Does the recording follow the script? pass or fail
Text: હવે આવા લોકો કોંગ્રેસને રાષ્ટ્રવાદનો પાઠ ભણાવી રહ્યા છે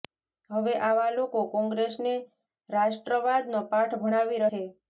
fail